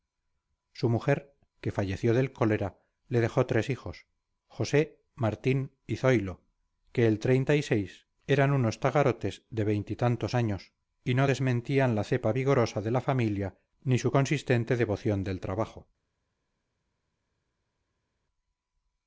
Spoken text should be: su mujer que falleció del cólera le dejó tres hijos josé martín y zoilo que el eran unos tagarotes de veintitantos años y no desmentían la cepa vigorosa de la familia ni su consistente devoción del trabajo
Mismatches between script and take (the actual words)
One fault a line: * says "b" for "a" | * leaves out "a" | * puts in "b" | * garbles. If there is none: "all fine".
all fine